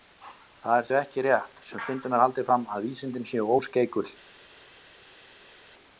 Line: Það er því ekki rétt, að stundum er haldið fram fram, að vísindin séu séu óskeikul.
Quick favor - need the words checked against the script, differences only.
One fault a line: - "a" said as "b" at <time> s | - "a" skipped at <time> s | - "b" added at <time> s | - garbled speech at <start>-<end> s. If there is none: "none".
- "að" said as "sem" at 1.7 s
- "fram" skipped at 2.7 s
- "séu" skipped at 3.5 s